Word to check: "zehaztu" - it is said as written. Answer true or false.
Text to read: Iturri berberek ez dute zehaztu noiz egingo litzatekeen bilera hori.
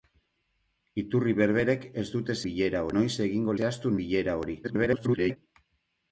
false